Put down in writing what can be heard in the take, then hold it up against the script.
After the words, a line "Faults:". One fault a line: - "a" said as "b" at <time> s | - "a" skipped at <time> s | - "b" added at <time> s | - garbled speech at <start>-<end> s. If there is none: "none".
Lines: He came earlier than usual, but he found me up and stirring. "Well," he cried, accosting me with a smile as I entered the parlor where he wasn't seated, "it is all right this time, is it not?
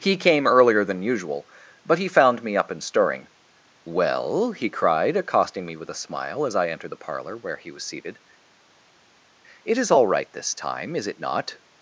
He came earlier than usual, but he found me up and stirring. "Well," he cried, accosting me with a smile as I entered the parlor where he was seated, "it is all right this time, is it not?
Faults:
- "wasn't" said as "was" at 7.7 s